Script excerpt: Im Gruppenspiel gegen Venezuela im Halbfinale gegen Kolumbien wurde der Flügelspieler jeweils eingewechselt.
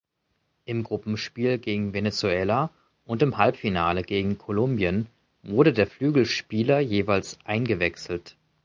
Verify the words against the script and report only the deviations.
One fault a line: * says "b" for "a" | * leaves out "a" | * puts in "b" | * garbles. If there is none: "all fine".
* puts in "und"